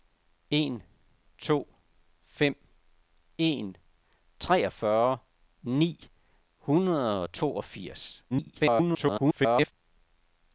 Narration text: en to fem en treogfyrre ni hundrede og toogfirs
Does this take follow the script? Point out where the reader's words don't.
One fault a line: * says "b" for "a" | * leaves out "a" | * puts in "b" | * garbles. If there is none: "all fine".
* garbles